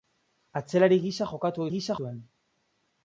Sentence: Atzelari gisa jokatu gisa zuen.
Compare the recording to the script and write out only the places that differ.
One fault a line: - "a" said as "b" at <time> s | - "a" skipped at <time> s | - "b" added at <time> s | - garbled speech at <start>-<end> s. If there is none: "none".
none